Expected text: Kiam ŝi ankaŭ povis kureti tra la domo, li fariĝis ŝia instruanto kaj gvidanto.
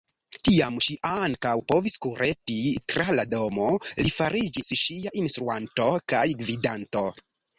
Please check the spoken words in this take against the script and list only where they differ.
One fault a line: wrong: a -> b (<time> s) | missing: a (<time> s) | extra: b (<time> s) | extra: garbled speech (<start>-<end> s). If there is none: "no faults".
no faults